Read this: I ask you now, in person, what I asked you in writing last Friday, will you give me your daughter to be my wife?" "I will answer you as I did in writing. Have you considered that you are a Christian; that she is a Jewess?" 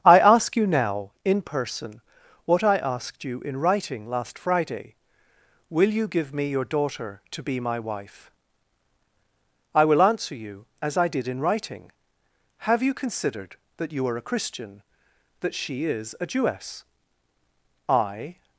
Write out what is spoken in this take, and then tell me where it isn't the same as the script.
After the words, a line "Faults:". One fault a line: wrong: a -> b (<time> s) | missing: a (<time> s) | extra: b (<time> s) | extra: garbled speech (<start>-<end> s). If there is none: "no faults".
I ask you now, in person, what I asked you in writing last Friday, will you give me your daughter to be my wife?" "I will answer you as I did in writing. Have you considered that you are a Christian; that she is a Jewess?" "I
Faults:
extra: I (17.9 s)